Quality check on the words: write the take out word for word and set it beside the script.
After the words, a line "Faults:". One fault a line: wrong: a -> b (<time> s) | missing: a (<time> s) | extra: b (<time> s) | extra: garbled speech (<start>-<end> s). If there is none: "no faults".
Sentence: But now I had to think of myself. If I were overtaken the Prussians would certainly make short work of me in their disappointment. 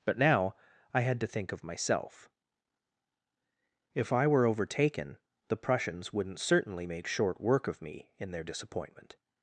But now I had to think of myself. If I were overtaken the Prussians wouldn't certainly make short work of me in their disappointment.
Faults:
wrong: would -> wouldn't (6.1 s)